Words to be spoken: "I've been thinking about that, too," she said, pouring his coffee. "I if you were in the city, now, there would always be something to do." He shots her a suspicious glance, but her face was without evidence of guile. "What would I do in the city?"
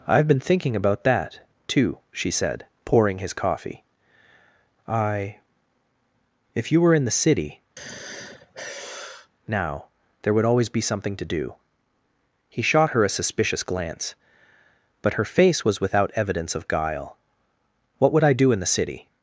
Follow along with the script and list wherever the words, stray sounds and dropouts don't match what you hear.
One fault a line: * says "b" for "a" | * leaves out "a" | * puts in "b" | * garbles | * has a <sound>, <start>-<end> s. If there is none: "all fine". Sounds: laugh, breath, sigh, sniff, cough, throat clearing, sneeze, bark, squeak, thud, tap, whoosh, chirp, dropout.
* has a sigh, 7.8-9.3 s
* says "shot" for "shots"